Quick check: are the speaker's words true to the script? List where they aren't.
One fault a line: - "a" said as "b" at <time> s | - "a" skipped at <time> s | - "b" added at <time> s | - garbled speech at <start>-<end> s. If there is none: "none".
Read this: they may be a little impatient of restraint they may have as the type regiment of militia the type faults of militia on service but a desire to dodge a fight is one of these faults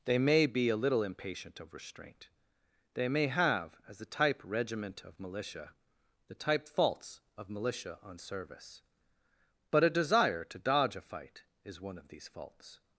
none